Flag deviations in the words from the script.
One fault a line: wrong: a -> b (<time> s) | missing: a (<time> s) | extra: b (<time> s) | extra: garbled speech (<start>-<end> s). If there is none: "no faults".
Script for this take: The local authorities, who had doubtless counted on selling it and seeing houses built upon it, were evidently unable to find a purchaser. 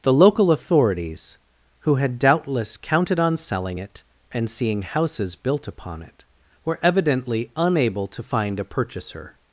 no faults